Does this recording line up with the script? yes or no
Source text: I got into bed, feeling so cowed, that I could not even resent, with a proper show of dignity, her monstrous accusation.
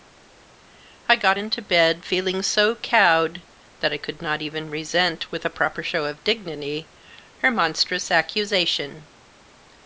yes